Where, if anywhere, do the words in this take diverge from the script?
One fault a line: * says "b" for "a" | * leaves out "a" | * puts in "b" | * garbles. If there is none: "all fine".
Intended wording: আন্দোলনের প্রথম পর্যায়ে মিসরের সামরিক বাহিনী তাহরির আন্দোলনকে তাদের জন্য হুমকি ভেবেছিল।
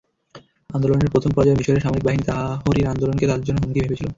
all fine